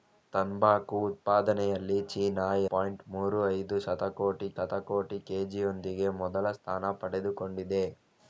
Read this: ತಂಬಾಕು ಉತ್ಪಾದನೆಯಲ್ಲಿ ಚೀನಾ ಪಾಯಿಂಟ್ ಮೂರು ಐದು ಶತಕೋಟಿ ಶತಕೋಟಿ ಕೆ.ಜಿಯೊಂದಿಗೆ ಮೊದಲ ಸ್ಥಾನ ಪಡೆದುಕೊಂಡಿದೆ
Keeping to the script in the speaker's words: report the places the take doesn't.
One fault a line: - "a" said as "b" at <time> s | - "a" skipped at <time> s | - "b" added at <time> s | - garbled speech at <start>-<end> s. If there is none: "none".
none